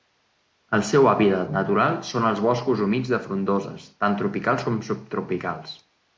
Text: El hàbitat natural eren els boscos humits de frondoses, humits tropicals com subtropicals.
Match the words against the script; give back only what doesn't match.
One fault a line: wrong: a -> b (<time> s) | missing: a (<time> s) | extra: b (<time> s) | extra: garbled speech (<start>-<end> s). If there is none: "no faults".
extra: seu (0.9 s)
wrong: eren -> són (2.1 s)
wrong: humits -> tant (4.1 s)